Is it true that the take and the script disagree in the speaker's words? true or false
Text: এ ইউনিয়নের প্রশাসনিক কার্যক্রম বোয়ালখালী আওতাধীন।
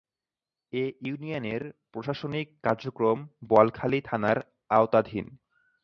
true